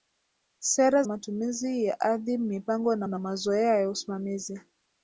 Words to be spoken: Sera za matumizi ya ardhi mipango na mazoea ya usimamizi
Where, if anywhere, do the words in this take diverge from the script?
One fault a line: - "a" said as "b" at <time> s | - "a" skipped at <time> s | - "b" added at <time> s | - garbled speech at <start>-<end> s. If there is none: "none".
- "za" skipped at 1.0 s
- "na" added at 3.1 s